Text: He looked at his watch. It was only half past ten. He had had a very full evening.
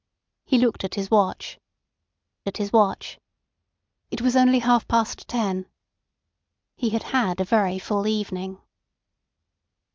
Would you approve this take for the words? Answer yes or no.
no